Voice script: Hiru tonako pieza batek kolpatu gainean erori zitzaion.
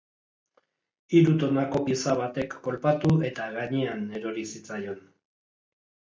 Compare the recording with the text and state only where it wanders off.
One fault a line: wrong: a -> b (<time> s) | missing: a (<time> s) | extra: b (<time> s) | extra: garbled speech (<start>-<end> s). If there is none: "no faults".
extra: eta (3.3 s)